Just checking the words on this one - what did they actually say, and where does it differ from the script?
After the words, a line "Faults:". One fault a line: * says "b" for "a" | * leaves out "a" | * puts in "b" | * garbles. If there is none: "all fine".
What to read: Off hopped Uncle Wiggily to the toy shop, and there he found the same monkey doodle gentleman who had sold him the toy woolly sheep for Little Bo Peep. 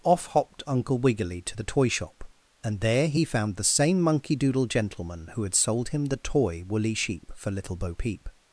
Off hopped Uncle Wiggily to the toy shop, and there he found the same monkey doodle gentleman who had sold him the toy woolly sheep for Little Bo Peep.
Faults:
all fine